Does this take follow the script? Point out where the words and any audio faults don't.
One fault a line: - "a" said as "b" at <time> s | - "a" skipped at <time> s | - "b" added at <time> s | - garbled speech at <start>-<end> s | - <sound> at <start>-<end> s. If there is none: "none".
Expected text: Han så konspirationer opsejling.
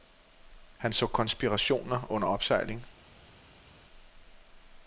- "under" added at 2.1 s